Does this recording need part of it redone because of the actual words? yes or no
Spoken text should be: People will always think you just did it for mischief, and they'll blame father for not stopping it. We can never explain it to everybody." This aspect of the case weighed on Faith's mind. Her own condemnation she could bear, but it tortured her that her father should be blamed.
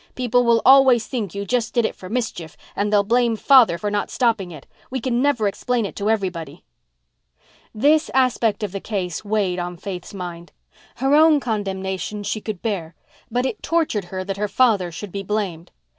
no